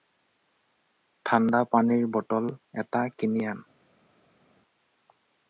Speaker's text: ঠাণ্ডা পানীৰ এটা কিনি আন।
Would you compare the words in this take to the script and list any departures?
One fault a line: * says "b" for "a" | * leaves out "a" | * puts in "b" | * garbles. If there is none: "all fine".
* puts in "বটল"